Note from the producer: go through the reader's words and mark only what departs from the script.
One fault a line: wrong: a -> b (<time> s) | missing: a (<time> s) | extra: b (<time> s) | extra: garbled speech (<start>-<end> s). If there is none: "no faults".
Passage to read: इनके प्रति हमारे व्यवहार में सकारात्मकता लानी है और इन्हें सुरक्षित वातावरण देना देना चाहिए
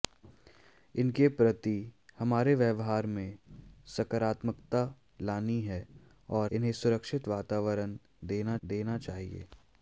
no faults